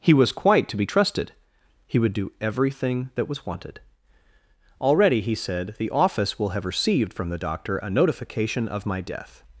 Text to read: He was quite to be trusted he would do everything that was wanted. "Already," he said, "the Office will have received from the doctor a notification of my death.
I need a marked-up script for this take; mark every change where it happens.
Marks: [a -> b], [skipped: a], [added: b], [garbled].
He was quite to be trusted he would do everything that was wanted. "Already," he said, "the Office will have received from the doctor a notification of my death.